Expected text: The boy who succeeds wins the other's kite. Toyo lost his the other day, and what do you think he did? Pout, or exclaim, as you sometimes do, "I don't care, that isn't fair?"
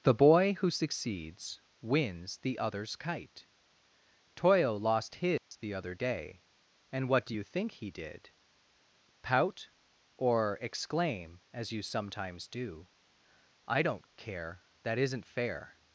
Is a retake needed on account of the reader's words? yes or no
no